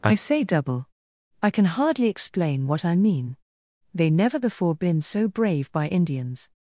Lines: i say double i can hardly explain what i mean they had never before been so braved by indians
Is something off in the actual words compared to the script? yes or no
yes